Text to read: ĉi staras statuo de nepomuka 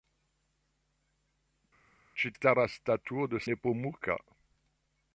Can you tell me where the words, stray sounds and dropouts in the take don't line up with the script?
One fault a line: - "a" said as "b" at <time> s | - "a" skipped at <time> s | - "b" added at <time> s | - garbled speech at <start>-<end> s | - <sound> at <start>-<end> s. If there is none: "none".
none